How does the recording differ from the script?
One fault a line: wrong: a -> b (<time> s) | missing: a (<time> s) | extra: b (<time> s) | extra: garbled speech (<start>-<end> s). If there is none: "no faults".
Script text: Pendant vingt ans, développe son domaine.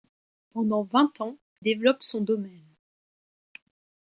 no faults